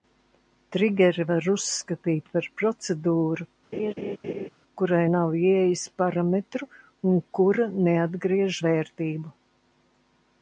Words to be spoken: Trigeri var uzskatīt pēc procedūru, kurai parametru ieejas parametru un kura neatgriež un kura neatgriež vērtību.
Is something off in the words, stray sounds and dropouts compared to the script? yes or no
yes